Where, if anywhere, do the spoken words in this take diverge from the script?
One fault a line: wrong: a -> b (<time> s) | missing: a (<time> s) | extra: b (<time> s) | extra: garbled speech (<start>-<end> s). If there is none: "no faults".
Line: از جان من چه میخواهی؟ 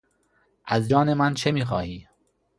no faults